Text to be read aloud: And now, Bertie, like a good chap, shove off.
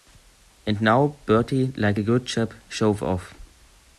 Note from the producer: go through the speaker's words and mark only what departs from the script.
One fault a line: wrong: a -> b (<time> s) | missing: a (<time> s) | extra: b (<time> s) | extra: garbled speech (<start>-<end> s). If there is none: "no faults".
no faults